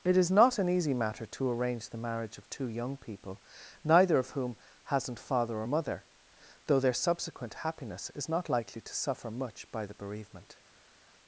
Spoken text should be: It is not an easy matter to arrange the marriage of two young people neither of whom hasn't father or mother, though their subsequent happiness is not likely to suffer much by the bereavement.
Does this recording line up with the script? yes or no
yes